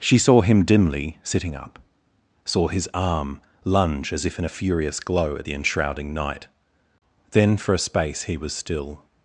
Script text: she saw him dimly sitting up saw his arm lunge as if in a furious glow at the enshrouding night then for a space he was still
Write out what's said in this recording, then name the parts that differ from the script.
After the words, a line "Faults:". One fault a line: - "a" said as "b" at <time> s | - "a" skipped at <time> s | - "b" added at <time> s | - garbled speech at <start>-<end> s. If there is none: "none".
she saw him dimly sitting up saw his arm lunge as if in a furious glow at the enshrouding night then for a space he was still
Faults:
none